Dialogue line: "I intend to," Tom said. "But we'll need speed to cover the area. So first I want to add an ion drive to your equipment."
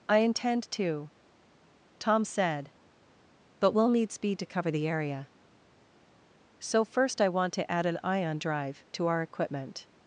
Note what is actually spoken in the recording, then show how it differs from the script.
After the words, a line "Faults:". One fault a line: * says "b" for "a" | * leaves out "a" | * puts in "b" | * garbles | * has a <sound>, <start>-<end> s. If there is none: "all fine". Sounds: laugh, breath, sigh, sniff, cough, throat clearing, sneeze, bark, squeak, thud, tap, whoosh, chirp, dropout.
"I intend to," Tom said. "But we'll need speed to cover the area. So first I want to add an ion drive to our equipment."
Faults:
* says "our" for "your"